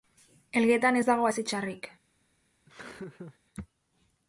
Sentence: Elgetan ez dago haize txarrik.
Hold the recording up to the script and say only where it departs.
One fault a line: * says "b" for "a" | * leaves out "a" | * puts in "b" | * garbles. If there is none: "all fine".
all fine